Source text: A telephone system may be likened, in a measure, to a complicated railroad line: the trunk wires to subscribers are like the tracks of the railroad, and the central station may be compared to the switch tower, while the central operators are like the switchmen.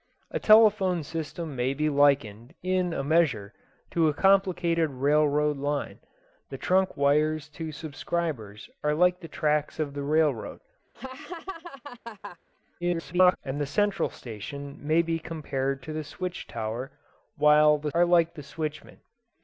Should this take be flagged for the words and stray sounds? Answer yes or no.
yes